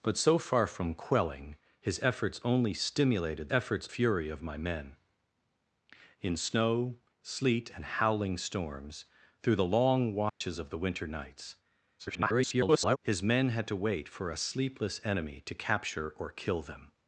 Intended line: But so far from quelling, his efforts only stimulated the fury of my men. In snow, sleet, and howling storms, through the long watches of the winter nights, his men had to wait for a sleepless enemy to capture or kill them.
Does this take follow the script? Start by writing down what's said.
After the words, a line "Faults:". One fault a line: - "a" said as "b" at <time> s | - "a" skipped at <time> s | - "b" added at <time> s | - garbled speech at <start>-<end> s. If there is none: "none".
But so far from quelling, his efforts only stimulated efforts fury of my men. In snow, sleet, and howling storms, through the long watches of the winter nights, [garbled] his men had to wait for a sleepless enemy to capture or kill them.
Faults:
- "the" said as "efforts" at 3.5 s
- garbled speech at 12.0-13.0 s